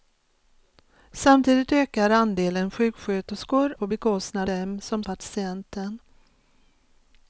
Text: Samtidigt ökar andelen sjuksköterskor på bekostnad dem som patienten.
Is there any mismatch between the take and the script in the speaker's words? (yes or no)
no